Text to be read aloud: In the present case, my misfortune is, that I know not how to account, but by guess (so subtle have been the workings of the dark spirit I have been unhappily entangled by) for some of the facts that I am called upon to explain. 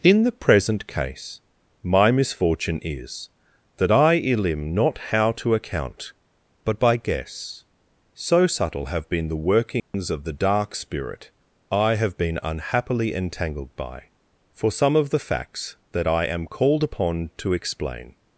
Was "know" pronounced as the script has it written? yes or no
no